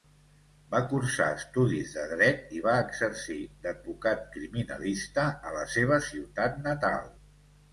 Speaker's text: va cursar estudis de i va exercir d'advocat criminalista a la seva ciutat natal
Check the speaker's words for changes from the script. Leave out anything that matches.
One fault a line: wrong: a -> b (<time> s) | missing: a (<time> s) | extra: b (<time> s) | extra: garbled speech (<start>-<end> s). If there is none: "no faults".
extra: dret (2.1 s)